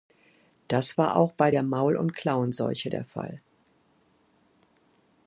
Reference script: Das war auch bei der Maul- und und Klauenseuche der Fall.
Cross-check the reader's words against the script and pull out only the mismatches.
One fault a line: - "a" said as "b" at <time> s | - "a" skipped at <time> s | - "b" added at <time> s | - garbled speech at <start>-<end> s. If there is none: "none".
- "und" skipped at 2.1 s